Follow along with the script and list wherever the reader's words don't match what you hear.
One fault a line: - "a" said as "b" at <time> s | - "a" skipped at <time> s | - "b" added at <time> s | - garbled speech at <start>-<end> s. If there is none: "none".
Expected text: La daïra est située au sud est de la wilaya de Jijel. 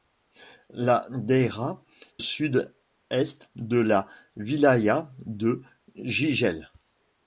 - "est située au" skipped at 1.8 s